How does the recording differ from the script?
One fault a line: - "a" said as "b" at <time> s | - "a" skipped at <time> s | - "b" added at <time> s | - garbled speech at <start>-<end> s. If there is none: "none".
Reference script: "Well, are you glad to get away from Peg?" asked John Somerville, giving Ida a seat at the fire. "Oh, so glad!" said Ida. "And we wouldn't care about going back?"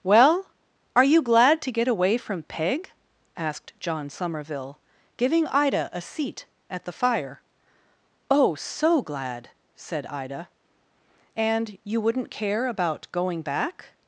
- "we" said as "you" at 11.8 s